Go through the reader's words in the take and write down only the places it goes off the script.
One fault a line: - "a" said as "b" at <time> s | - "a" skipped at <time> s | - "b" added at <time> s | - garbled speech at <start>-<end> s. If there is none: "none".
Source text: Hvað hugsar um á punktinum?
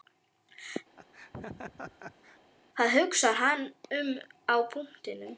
- "hann" added at 3.4 s